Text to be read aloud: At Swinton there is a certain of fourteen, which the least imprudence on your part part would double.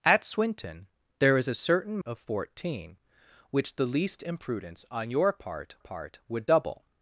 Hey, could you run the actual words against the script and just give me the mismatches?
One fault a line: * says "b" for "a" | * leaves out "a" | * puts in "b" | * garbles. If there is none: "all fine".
all fine